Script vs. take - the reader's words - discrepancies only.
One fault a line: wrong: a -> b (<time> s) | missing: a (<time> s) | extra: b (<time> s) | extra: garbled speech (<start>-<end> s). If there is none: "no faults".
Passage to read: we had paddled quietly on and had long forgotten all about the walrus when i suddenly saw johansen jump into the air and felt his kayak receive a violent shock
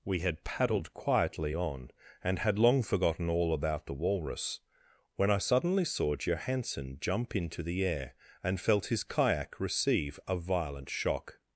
no faults